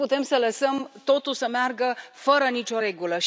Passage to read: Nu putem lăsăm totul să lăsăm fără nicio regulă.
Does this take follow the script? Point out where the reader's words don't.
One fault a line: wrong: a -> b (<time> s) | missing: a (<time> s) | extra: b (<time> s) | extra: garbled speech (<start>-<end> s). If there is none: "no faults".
extra: să (0.2 s)
wrong: lăsăm -> meargă (1.5 s)